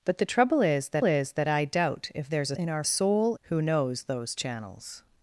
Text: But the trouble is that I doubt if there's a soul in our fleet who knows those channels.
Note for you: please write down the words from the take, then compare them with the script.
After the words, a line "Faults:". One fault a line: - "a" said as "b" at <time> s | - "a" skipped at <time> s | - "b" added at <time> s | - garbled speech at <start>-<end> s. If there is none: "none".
But the trouble is that is that I doubt if there's a in our soul who knows those channels.
Faults:
- "is that" added at 1.0 s
- "soul" skipped at 2.6 s
- "fleet" said as "soul" at 2.8 s